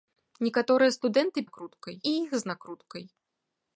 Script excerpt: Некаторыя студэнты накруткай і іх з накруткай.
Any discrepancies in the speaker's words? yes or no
no